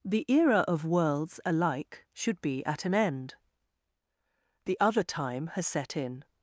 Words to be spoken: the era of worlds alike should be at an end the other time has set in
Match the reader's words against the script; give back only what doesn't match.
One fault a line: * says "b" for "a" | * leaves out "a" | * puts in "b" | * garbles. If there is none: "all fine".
all fine